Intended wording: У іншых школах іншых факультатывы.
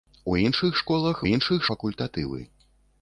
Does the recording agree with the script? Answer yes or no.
yes